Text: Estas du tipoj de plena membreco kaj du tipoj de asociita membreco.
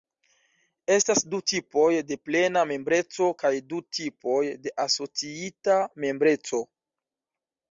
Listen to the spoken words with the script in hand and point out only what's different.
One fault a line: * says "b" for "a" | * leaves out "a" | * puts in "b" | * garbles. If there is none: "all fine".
all fine